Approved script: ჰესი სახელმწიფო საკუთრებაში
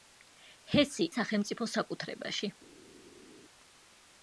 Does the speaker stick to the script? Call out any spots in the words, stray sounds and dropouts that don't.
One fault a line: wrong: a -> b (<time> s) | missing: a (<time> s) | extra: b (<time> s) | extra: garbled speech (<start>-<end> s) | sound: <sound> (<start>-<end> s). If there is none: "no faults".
no faults